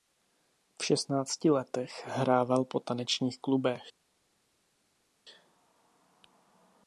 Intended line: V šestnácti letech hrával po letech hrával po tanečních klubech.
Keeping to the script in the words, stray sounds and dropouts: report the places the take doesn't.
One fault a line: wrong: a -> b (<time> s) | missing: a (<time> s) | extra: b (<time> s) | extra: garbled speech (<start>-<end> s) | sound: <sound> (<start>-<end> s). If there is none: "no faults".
missing: letech hrával po (2.8 s)